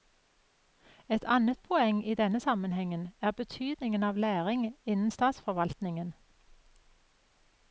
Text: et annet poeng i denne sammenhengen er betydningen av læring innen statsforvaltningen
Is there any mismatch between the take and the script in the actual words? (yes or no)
no